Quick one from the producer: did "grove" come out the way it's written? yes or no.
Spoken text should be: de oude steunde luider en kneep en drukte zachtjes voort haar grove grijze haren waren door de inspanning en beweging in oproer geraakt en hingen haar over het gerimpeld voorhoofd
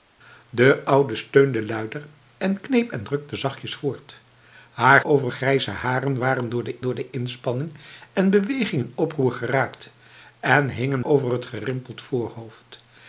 no